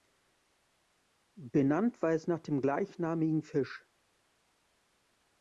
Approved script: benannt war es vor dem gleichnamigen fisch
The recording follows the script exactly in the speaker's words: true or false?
false